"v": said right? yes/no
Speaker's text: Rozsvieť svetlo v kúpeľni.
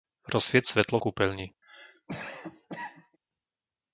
no